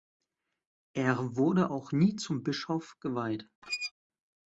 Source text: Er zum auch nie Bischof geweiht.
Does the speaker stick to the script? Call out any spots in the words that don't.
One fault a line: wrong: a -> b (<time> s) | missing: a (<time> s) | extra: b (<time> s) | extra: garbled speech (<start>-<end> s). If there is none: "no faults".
wrong: zum -> wurde (1.4 s)
extra: zum (2.2 s)